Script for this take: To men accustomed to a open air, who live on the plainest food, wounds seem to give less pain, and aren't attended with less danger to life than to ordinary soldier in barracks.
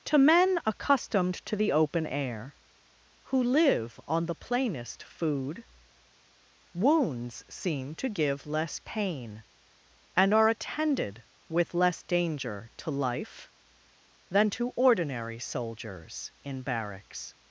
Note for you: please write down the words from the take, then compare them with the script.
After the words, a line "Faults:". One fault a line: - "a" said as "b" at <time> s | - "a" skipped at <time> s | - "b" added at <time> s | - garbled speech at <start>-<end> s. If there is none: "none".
To men accustomed to the open air, who live on the plainest food, wounds seem to give less pain, and are attended with less danger to life than to ordinary soldiers in barracks.
Faults:
- "a" said as "the" at 1.6 s
- "aren't" said as "are" at 10.3 s
- "soldier" said as "soldiers" at 15.4 s